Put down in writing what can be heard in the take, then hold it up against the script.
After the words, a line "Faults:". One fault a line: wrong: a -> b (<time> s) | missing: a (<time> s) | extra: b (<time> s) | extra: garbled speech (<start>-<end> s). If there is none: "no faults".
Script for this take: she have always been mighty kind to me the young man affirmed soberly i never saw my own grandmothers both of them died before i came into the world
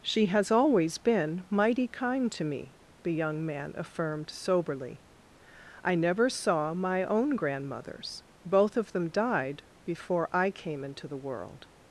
she has always been mighty kind to me the young man affirmed soberly i never saw my own grandmothers both of them died before i came into the world
Faults:
wrong: have -> has (0.3 s)